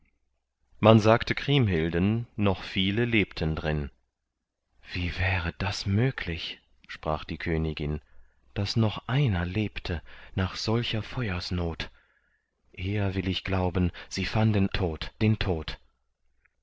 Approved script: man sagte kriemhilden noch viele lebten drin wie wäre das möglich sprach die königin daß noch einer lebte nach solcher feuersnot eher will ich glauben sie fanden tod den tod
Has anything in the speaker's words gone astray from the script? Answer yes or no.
no